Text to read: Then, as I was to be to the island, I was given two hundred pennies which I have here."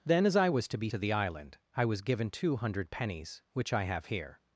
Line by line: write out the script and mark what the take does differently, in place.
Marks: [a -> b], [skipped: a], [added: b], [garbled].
Then, as I was to be to the island, I was given two hundred pennies which I have here."